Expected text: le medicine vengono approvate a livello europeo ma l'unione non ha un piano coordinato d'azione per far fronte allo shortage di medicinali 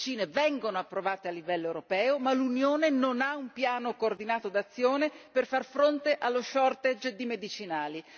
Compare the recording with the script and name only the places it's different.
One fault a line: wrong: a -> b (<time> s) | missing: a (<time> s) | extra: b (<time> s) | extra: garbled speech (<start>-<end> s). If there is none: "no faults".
no faults